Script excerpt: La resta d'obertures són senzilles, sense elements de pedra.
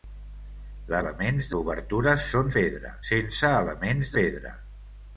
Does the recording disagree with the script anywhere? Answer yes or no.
yes